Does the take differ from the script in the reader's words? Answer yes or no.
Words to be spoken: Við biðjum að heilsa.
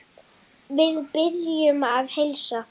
no